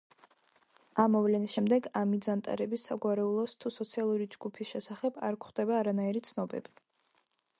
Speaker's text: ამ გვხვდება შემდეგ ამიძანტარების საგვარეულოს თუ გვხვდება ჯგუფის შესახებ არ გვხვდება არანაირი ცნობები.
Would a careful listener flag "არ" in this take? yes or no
no